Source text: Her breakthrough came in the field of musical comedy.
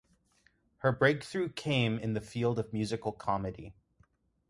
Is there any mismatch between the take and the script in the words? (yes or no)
no